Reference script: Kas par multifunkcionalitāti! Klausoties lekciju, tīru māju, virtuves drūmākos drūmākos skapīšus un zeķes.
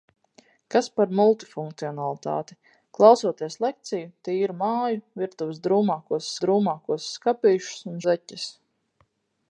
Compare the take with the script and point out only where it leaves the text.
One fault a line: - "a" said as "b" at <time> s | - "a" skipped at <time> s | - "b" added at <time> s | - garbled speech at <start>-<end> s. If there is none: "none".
none